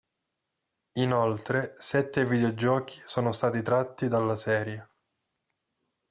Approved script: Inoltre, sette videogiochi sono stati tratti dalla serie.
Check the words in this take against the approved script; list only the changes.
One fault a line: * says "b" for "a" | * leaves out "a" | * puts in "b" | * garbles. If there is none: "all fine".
all fine